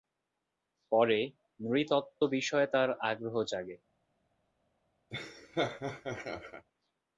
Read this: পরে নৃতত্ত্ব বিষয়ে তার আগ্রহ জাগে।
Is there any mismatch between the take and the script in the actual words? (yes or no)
no